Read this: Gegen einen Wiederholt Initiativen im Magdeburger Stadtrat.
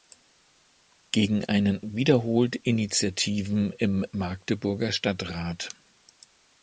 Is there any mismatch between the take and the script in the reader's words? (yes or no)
no